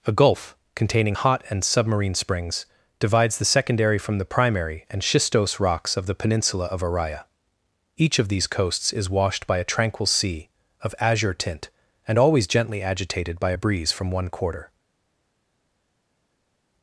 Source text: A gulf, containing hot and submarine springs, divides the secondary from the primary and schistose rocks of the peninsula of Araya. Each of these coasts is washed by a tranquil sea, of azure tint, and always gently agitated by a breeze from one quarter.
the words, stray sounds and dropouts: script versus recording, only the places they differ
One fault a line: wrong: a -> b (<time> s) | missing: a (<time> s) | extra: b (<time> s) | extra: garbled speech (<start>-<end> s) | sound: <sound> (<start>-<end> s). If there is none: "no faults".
no faults